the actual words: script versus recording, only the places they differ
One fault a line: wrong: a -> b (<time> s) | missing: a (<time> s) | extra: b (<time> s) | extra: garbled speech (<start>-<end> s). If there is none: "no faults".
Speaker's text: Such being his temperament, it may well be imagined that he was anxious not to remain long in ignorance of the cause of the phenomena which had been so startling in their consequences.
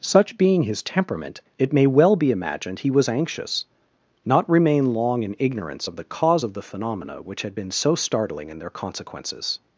missing: that (2.8 s)
missing: to (4.5 s)